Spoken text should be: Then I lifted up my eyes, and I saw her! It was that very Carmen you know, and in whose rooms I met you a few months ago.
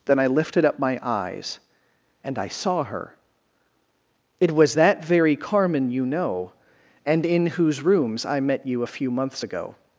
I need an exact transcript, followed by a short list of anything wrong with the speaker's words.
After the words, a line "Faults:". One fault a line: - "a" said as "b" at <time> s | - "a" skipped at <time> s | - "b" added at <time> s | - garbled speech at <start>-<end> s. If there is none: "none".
Then I lifted up my eyes, and I saw her! It was that very Carmen you know, and in whose rooms I met you a few months ago.
Faults:
none